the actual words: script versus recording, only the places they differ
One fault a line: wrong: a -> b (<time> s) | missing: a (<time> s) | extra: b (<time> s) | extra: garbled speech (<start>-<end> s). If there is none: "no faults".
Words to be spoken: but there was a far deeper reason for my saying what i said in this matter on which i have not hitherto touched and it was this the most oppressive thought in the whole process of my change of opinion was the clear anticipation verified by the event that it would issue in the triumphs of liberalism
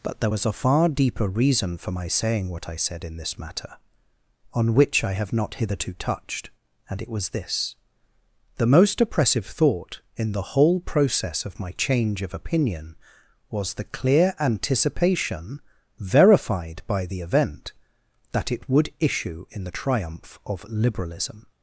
wrong: triumphs -> triumph (19.8 s)